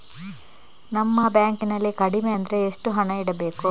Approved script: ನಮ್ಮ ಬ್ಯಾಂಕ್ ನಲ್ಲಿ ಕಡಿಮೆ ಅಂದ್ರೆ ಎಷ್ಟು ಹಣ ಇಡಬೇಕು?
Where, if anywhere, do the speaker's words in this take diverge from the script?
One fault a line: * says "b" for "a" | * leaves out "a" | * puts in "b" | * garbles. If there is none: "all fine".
all fine